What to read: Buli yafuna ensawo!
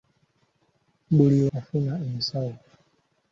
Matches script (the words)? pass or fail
pass